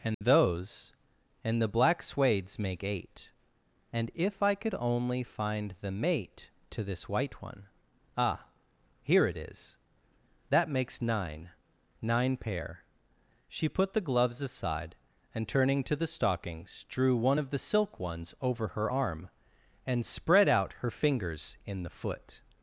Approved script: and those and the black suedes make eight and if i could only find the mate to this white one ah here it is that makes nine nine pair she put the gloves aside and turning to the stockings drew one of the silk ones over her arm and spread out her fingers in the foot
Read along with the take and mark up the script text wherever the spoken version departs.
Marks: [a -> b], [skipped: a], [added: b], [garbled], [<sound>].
and [dropout] those and the black suedes make eight and if i could only find the mate to this white one ah here it is that makes nine nine pair she put the gloves aside and turning to the stockings drew one of the silk ones over her arm and spread out her fingers in the foot